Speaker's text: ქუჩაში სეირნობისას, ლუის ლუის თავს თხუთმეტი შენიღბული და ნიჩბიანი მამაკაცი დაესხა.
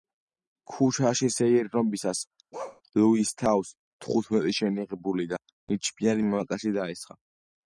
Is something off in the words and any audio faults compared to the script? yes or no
yes